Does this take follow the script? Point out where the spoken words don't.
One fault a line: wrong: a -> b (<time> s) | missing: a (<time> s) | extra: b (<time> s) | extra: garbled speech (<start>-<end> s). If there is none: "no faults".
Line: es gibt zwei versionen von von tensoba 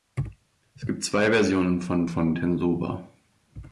no faults